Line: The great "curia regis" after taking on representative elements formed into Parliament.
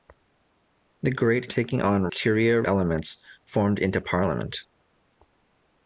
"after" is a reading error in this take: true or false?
true